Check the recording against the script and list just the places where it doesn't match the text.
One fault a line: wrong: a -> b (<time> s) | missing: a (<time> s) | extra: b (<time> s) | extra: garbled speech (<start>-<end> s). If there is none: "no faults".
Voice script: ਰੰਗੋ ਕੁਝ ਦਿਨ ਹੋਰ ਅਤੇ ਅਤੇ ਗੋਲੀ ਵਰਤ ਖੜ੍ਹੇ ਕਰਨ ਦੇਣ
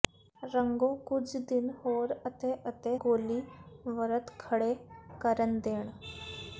no faults